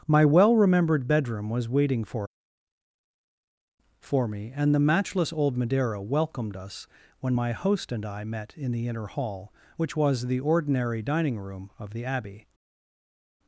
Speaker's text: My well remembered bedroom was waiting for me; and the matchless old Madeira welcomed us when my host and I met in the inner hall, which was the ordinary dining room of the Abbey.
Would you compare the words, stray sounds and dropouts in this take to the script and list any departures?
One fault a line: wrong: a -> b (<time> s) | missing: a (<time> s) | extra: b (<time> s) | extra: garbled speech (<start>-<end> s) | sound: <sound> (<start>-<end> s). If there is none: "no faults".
extra: for (4.0 s)